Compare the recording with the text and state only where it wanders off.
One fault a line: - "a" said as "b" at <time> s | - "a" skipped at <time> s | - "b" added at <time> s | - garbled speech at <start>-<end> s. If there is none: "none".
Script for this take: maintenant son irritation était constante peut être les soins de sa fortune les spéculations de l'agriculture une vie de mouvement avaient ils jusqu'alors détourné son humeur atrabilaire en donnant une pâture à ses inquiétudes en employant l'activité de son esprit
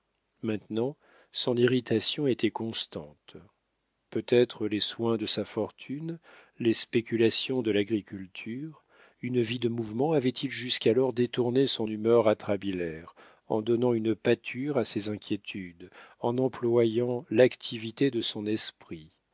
none